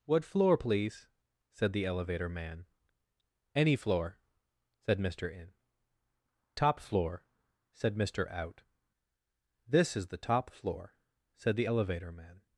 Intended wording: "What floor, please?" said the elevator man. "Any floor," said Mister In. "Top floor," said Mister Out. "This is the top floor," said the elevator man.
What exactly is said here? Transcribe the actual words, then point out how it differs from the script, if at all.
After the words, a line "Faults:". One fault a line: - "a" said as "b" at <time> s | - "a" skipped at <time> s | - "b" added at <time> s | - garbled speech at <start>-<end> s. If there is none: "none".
"What floor, please?" said the elevator man. "Any floor," said Mister In. "Top floor," said Mister Out. "This is the top floor," said the elevator man.
Faults:
none